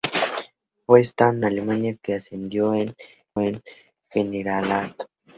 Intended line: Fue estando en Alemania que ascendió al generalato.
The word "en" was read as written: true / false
false